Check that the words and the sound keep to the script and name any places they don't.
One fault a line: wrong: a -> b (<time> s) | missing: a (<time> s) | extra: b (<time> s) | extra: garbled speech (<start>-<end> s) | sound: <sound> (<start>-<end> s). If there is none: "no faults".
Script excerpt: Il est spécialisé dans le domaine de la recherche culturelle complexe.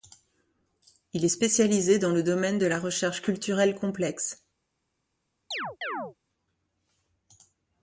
sound: chirp (5.5-6.2 s)